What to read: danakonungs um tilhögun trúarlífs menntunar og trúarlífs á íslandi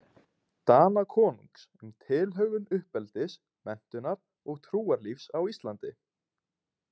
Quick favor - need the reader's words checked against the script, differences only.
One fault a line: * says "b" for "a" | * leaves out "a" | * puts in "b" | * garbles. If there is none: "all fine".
* says "uppeldis" for "trúarlífs"